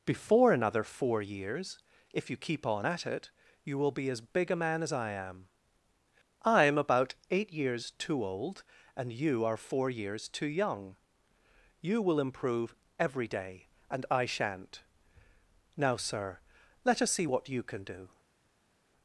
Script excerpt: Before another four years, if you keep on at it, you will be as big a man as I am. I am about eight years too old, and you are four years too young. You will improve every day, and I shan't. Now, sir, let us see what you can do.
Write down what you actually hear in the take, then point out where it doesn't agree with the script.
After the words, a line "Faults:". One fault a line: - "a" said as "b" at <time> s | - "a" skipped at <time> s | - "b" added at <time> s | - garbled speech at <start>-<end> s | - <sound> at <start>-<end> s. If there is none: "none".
Before another four years, if you keep on at it, you will be as big a man as I am. I am about eight years too old, and you are four years too young. You will improve every day, and I shan't. Now, sir, let us see what you can do.
Faults:
none